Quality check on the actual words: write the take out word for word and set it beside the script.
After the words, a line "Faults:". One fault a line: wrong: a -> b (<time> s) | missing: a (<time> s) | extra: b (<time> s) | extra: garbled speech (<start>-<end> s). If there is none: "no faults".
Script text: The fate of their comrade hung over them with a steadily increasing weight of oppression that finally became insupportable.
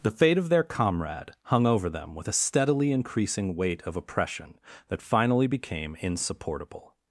The fate of their comrade hung over them with a steadily increasing weight of oppression that finally became insupportable.
Faults:
no faults